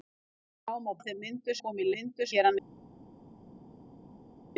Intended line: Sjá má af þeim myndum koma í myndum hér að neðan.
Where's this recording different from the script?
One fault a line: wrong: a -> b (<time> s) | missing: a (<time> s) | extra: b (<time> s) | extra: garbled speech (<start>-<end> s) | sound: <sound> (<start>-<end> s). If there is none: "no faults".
no faults